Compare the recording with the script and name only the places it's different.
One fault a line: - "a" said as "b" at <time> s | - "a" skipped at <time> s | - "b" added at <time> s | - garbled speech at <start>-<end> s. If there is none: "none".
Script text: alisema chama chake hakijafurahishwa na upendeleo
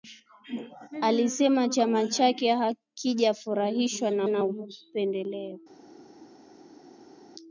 - "na" added at 4.3 s